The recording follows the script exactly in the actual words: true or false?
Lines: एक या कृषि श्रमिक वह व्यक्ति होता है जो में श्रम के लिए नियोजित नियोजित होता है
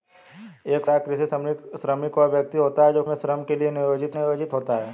true